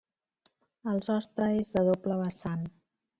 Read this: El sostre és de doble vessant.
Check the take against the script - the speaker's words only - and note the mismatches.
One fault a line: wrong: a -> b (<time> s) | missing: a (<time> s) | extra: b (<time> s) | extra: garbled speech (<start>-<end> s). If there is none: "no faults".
no faults